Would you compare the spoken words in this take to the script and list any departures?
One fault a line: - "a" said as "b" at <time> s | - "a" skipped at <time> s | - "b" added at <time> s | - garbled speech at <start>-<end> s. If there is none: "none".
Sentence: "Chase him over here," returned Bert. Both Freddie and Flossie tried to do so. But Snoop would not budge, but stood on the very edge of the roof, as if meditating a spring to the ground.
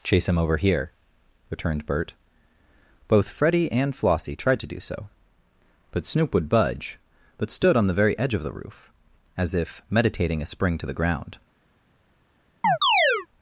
- "not" skipped at 6.5 s